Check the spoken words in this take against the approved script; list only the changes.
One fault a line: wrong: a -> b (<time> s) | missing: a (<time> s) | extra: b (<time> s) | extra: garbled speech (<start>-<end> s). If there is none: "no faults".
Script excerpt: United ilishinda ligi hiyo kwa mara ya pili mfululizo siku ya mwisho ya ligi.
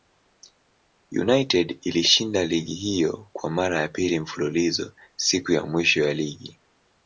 no faults